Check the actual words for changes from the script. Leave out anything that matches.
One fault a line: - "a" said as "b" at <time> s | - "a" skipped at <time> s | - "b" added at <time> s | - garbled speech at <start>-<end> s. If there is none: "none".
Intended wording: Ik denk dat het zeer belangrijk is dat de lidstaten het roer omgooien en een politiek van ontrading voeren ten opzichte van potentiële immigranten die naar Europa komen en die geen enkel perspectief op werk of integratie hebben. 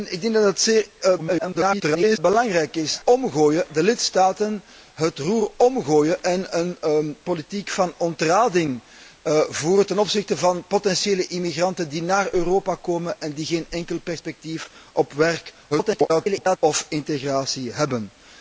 - garbled speech at 1.2-2.2 s
- "dat" said as "omgooien" at 3.0 s
- garbled speech at 15.7-16.6 s